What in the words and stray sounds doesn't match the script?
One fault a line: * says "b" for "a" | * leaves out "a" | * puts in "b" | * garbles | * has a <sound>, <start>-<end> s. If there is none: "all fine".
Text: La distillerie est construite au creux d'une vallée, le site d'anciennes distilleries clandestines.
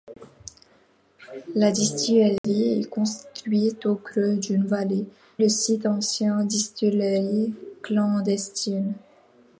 * has a dropout, 2.4-2.4 s